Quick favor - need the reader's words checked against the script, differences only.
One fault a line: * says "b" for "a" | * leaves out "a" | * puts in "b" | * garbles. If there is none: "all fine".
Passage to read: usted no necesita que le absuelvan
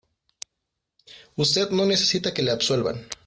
all fine